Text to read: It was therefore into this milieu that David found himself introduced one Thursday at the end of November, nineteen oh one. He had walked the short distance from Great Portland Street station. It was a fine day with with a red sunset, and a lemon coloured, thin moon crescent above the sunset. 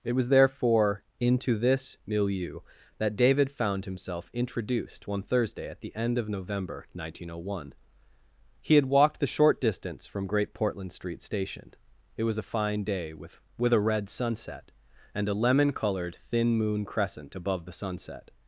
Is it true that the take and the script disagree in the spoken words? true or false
false